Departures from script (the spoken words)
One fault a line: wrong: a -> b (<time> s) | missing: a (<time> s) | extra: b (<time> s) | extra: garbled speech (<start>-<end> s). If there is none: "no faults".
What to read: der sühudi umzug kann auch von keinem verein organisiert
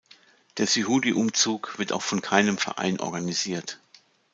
wrong: kann -> wird (1.8 s)